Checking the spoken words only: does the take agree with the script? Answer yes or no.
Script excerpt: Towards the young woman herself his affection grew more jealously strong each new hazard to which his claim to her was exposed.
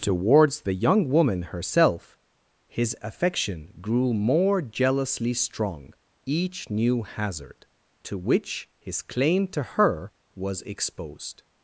yes